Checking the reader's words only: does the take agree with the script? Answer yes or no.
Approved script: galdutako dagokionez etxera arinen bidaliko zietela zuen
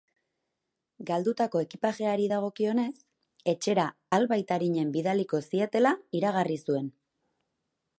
no